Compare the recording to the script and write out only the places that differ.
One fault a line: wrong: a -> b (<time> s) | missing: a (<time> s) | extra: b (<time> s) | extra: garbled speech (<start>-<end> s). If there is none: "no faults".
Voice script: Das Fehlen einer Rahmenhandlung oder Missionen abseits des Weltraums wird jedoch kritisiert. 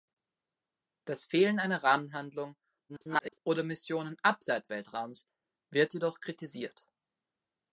extra: garbled speech (2.9-3.4 s)
missing: des (4.7 s)